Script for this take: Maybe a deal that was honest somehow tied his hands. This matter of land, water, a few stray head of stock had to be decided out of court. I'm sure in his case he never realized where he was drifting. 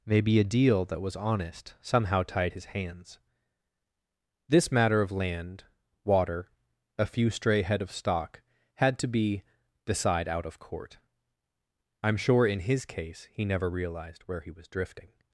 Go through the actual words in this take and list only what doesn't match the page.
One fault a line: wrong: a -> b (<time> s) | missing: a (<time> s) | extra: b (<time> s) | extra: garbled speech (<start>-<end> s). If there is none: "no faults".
wrong: decided -> decide (9.9 s)